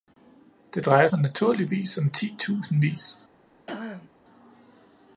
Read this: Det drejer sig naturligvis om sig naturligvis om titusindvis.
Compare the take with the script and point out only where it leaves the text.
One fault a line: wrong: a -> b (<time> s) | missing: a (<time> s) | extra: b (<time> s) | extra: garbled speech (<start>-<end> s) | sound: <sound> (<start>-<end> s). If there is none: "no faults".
missing: sig naturligvis om (2.1 s)
sound: throat clearing (3.7-4.1 s)